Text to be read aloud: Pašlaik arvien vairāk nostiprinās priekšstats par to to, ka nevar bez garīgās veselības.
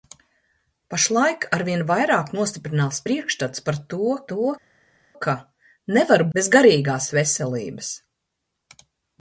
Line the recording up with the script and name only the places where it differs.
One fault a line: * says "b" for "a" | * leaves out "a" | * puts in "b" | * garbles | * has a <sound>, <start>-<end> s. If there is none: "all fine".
all fine